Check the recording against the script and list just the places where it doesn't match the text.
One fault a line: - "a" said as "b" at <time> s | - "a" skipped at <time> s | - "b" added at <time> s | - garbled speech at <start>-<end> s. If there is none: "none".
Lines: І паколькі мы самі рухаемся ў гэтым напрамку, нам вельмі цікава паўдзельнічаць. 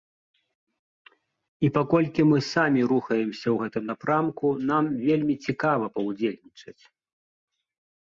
none